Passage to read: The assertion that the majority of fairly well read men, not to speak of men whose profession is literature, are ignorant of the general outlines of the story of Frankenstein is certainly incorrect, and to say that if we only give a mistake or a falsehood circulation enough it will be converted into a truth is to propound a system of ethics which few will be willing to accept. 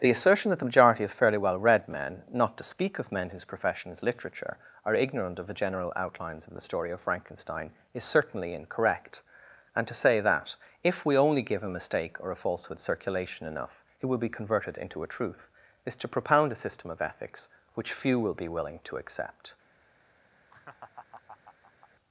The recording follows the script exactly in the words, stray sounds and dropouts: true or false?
false